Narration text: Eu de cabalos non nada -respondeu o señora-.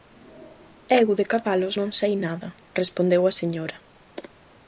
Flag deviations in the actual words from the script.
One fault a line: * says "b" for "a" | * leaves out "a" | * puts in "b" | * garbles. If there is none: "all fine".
* puts in "sei"
* says "a" for "o"